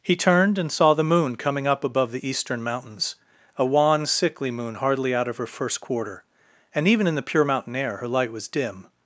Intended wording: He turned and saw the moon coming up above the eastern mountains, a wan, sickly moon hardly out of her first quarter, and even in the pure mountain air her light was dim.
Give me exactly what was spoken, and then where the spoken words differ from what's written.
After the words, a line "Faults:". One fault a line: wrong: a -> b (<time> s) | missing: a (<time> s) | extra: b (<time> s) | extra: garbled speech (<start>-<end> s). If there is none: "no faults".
He turned and saw the moon coming up above the eastern mountains, a wan, sickly moon hardly out of her first quarter, and even in the pure mountain air her light was dim.
Faults:
no faults